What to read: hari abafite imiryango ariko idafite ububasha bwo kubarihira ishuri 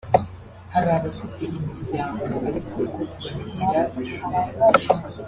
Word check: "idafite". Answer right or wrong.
wrong